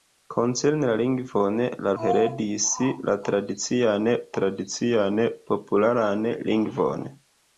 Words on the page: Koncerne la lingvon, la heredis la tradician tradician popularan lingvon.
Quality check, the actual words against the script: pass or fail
pass